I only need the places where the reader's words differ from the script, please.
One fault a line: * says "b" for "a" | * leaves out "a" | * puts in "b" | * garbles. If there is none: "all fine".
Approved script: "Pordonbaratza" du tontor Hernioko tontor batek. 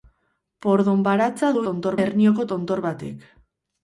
all fine